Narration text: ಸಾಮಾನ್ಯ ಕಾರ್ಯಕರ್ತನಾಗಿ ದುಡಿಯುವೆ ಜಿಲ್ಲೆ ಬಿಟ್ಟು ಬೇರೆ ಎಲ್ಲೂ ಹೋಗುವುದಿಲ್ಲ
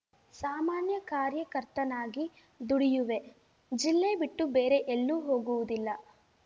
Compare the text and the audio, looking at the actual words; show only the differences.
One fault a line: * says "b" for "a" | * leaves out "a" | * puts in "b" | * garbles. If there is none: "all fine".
all fine